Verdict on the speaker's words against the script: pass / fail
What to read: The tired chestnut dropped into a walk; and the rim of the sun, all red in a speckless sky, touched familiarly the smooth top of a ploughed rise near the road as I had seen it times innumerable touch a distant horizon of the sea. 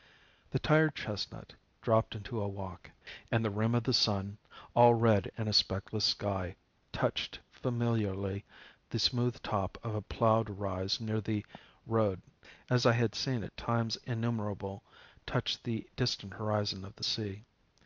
fail